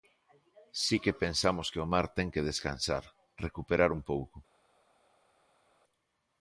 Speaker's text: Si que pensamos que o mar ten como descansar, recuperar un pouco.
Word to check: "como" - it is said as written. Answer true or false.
false